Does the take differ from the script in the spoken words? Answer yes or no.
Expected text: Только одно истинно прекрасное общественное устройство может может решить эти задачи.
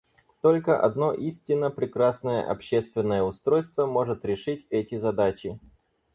yes